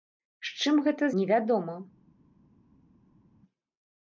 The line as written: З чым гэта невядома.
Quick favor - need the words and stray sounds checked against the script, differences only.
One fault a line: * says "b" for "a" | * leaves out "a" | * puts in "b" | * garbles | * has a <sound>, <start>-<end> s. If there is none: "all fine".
all fine